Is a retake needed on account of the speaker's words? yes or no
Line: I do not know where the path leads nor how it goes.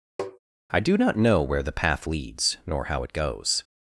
no